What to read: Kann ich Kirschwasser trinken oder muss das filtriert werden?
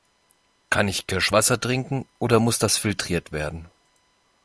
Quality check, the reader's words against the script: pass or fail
pass